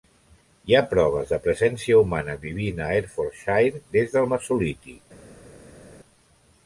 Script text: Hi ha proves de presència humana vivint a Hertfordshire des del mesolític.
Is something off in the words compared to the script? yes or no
no